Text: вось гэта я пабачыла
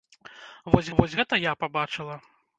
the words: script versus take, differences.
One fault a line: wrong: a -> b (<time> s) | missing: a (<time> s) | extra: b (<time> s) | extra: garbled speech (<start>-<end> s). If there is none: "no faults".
extra: вось (1.0 s)